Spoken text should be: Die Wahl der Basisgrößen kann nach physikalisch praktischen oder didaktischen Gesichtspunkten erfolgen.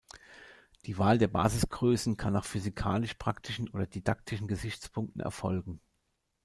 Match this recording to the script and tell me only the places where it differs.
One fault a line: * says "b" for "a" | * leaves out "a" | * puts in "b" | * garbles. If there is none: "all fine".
all fine